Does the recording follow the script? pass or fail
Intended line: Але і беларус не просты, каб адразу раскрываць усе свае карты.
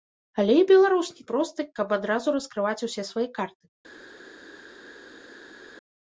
pass